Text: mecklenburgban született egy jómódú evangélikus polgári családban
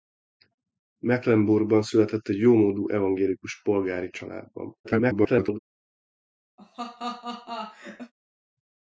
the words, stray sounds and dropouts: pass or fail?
fail